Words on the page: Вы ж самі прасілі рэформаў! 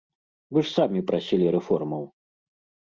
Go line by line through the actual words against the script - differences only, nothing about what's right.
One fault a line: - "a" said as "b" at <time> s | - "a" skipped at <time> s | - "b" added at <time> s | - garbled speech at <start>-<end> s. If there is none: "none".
none